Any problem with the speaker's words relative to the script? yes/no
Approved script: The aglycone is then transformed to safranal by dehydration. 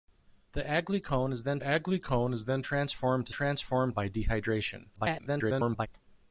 yes